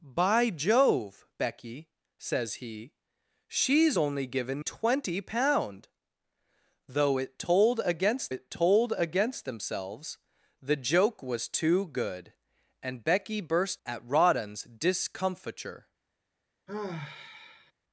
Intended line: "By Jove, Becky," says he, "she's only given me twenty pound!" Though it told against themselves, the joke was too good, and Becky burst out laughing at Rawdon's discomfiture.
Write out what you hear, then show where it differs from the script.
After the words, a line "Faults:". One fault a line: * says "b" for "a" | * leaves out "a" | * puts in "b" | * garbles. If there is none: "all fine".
"By Jove, Becky," says he, "she's only given twenty pound!" Though it told against it told against themselves, the joke was too good, and Becky burst at Rawdon's discomfiture.
Faults:
* leaves out "me"
* puts in "it told against"
* leaves out "out laughing"